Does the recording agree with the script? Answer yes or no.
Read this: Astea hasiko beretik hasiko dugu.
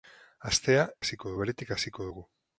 yes